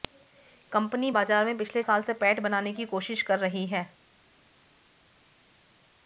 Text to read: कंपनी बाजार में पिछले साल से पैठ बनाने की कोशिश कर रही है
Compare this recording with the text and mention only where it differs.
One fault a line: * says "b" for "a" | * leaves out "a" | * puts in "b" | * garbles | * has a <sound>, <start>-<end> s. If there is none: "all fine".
all fine